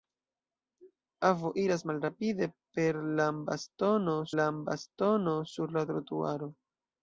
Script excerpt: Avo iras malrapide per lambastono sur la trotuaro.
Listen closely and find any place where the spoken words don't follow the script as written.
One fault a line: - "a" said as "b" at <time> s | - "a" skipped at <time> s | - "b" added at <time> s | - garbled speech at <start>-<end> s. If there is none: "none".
- "lambastono" added at 4.4 s